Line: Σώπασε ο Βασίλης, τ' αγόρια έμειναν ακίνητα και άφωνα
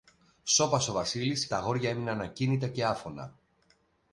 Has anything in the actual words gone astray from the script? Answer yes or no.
no